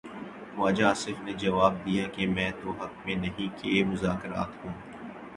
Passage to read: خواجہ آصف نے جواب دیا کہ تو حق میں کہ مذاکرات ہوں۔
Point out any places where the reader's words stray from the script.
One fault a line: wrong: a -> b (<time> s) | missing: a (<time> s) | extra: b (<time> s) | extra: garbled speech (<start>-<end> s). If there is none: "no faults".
extra: میں (2.3 s)
extra: نہیں (3.2 s)